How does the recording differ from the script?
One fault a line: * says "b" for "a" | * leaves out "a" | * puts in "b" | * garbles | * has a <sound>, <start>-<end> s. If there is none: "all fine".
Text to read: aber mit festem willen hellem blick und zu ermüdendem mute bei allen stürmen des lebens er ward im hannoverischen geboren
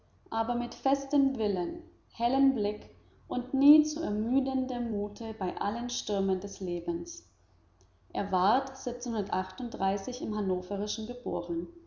* puts in "nie"